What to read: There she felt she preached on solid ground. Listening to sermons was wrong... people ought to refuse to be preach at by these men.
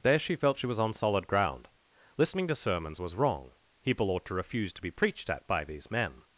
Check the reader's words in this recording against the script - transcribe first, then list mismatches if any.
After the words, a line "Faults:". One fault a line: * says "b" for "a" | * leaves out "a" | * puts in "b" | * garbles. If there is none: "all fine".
There she felt she was on solid ground. Listening to sermons was wrong... people ought to refuse to be preached at by these men.
Faults:
* says "was" for "preached"
* says "preached" for "preach"